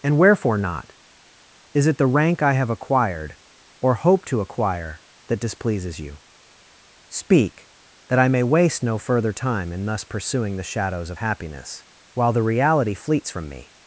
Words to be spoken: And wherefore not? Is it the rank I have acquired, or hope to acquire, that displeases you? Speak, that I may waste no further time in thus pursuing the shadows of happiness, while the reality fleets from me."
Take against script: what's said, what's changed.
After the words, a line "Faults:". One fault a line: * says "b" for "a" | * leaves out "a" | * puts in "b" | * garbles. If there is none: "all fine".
And wherefore not? Is it the rank I have acquired, or hope to acquire, that displeases you? Speak, that I may waste no further time in thus pursuing the shadows of happiness, while the reality fleets from me."
Faults:
all fine